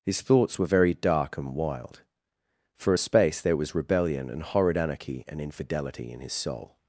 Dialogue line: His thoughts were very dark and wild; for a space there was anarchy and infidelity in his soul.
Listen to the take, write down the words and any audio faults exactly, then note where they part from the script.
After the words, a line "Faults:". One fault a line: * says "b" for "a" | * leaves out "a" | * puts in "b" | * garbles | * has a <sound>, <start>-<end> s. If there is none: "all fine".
His thoughts were very dark and wild; for a space there was rebellion and horrid anarchy and infidelity in his soul.
Faults:
* puts in "rebellion and horrid"